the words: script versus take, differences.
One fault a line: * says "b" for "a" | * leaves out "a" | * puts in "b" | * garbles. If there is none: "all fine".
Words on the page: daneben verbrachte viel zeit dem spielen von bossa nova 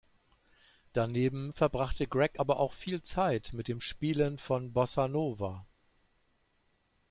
* puts in "greg aber auch"
* puts in "mit"